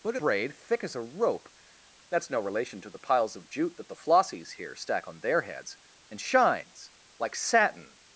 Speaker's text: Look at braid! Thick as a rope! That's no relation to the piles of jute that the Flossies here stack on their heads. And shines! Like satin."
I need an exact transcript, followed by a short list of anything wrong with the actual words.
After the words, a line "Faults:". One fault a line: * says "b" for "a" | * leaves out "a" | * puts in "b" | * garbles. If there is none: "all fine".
Look at braid! Thick as a rope! That's no relation to the piles of jute that the Flossies here stack on their heads. And shines! Like satin."
Faults:
all fine